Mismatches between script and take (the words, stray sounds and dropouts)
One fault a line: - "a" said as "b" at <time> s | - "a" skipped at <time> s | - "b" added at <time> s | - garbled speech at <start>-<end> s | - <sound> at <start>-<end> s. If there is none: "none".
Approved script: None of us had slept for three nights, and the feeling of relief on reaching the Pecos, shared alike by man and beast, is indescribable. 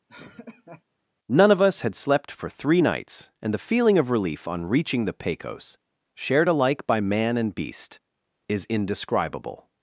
- laugh at 0.1-0.8 s